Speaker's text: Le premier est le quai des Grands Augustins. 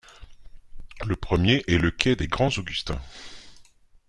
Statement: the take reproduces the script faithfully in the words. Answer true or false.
true